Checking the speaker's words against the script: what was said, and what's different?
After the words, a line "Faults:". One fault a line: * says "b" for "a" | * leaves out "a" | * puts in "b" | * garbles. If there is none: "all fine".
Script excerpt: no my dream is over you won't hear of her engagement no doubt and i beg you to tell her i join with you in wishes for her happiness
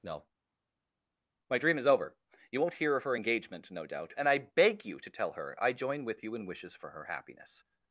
no my dream is over you won't hear of her engagement no doubt and i beg you to tell her i join with you in wishes for her happiness
Faults:
all fine